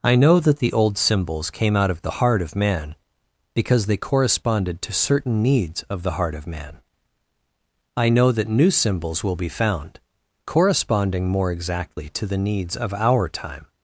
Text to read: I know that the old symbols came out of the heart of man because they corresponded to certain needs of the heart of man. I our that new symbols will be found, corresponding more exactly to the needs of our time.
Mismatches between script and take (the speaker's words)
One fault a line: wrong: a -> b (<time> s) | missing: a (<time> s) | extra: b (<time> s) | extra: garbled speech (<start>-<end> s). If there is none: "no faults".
wrong: our -> know (8.1 s)